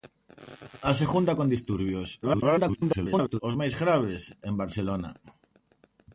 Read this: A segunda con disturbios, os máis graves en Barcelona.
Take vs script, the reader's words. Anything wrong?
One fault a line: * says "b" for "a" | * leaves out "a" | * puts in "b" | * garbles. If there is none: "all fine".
* garbles